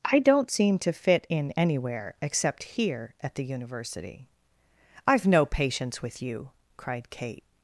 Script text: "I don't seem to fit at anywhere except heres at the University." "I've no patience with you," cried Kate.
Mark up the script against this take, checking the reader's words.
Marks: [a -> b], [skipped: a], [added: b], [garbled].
"I don't seem to fit [at -> in] anywhere except [heres -> here] at the University." "I've no patience with you," cried Kate.